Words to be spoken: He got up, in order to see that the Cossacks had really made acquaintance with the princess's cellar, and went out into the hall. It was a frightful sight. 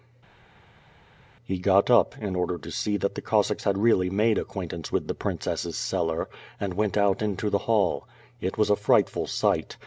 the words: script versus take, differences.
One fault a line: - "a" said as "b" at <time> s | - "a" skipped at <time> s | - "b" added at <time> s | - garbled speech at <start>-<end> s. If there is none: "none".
none